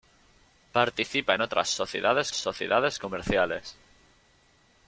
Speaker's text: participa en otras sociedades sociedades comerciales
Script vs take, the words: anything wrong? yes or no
no